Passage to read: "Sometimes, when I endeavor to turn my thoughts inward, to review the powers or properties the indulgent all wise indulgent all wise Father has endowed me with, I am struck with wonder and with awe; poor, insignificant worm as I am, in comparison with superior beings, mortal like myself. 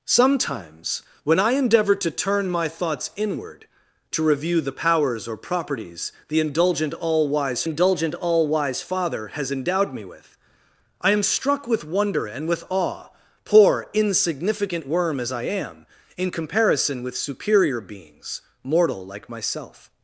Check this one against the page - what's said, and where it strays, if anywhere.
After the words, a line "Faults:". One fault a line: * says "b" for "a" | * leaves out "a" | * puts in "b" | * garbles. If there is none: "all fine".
"Sometimes, when I endeavor to turn my thoughts inward, to review the powers or properties the indulgent all wise indulgent all wise Father has endowed me with, I am struck with wonder and with awe; poor, insignificant worm as I am, in comparison with superior beings, mortal like myself.
Faults:
all fine